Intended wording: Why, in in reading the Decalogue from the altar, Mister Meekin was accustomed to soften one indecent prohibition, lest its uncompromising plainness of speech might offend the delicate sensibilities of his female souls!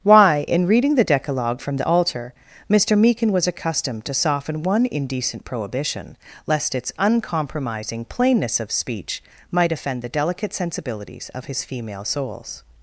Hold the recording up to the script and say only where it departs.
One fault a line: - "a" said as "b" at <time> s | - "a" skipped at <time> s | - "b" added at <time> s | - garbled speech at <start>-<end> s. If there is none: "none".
- "in" skipped at 0.7 s